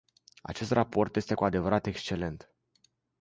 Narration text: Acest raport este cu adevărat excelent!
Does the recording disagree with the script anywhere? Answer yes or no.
no